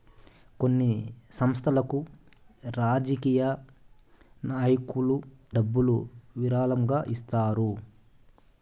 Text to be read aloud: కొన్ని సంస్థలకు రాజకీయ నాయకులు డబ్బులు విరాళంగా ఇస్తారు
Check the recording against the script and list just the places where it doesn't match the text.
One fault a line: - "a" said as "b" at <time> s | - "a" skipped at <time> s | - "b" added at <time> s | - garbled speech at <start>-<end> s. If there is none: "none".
none